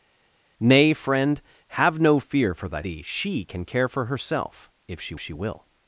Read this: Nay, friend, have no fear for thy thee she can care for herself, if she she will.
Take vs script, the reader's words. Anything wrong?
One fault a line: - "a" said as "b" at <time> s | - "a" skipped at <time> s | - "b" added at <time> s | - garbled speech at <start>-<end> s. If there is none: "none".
none